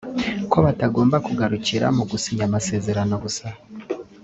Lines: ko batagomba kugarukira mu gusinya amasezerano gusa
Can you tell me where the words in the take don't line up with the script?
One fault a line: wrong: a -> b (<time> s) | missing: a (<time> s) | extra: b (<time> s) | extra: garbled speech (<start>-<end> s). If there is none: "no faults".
no faults